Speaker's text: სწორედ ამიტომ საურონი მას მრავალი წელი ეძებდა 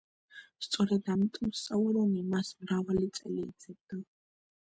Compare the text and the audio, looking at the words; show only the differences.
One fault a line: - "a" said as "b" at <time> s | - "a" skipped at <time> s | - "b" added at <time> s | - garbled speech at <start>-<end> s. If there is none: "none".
none